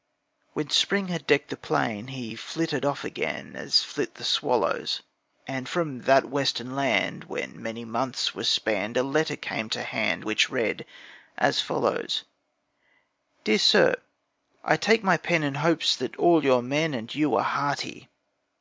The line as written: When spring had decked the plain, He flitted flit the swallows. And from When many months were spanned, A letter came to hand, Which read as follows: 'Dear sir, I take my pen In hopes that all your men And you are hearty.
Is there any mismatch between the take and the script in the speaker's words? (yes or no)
yes